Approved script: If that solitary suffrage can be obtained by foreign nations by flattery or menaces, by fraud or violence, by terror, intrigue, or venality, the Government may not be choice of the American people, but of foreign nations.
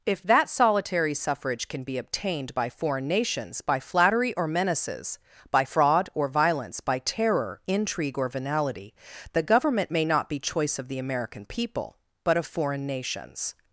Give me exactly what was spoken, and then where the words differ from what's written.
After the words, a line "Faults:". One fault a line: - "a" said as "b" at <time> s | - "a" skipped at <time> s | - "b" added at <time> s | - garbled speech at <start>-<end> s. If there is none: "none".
If that solitary suffrage can be obtained by foreign nations by flattery or menaces, by fraud or violence, by terror, intrigue, or venality, the Government may not be choice of the American people, but of foreign nations.
Faults:
none